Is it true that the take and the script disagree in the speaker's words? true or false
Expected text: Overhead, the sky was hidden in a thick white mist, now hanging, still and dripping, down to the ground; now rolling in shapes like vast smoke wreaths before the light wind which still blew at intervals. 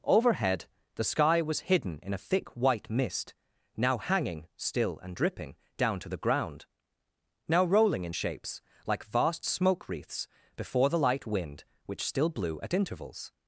false